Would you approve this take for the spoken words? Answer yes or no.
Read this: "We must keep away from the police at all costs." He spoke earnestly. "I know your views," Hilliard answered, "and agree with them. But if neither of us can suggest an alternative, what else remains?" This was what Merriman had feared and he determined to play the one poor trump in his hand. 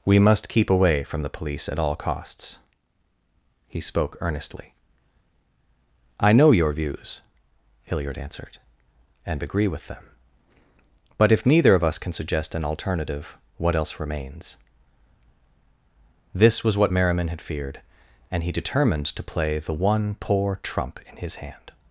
yes